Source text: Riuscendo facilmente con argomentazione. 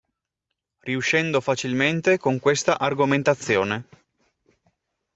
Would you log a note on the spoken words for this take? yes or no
yes